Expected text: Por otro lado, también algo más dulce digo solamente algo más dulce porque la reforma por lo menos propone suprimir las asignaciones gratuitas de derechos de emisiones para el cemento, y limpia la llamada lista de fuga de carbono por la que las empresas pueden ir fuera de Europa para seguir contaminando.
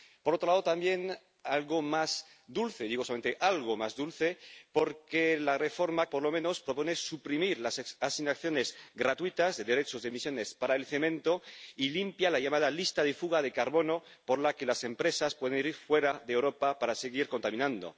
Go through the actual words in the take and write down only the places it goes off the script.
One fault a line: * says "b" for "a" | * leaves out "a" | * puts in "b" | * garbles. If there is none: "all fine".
all fine